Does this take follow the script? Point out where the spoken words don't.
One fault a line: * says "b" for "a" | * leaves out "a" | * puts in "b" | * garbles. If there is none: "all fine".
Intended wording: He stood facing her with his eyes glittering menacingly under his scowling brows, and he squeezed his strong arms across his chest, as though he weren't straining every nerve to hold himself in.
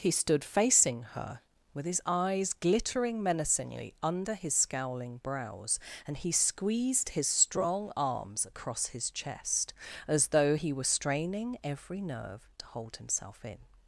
* says "were" for "weren't"